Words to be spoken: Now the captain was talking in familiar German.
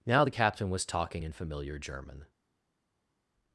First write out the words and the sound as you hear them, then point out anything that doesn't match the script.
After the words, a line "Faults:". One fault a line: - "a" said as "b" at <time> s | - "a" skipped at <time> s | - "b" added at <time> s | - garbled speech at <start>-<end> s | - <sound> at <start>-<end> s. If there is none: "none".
Now the captain was talking in familiar German.
Faults:
none